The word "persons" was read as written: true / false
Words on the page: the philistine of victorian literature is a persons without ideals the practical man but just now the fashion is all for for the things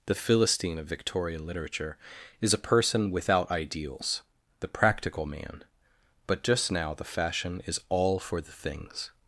false